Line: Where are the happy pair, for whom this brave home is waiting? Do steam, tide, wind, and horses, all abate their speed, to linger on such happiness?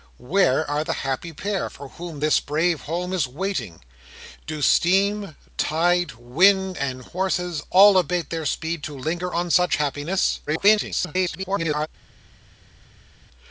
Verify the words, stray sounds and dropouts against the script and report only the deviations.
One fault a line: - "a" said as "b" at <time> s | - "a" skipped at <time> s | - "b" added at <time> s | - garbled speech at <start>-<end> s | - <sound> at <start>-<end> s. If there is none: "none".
- garbled speech at 10.5-11.9 s